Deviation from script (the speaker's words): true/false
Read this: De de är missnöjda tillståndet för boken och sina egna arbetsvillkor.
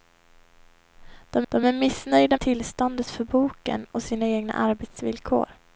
false